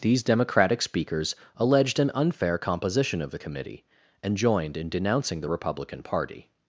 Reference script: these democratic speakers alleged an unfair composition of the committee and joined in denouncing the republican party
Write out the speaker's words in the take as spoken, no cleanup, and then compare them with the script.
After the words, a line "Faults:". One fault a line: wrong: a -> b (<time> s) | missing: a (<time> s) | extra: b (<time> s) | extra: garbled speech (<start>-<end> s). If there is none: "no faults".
these democratic speakers alleged an unfair composition of the committee and joined in denouncing the republican party
Faults:
no faults